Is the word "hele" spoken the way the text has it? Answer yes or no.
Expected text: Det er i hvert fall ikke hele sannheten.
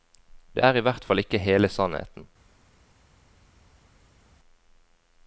yes